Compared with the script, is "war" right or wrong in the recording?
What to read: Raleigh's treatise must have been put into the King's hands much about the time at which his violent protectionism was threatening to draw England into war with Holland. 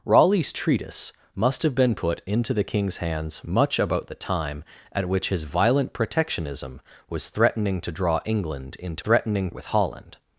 wrong